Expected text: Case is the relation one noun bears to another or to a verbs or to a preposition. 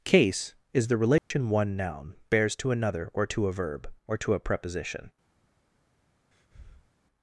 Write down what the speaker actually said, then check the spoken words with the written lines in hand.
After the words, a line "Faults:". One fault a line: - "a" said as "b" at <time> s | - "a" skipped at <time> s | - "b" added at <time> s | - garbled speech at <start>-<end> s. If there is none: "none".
Case is the relation one noun bears to another or to a verb or to a preposition.
Faults:
- "verbs" said as "verb" at 3.5 s